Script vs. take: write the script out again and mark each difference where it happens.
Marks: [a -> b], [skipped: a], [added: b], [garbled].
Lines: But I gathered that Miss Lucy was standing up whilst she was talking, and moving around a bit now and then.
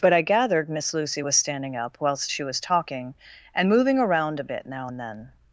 But I gathered [skipped: that] Miss Lucy was standing up whilst she was talking, and moving around a bit now and then.